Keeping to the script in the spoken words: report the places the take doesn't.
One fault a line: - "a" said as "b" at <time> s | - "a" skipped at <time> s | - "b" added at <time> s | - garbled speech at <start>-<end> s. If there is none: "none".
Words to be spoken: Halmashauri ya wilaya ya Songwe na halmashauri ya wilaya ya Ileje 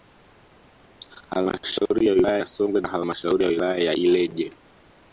none